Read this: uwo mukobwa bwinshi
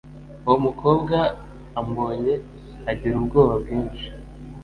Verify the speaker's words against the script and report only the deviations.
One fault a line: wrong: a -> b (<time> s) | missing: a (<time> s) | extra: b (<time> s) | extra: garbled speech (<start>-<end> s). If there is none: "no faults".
extra: ambonye agira ubwoba (1.8 s)